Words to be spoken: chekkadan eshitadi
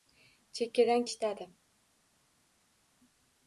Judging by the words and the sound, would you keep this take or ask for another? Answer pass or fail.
pass